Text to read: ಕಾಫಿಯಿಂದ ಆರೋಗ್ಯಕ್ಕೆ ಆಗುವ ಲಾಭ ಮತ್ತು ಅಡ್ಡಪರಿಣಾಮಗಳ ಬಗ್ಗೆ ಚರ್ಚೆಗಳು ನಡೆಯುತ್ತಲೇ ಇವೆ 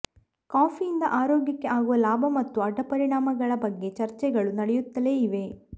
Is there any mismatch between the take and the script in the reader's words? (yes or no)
no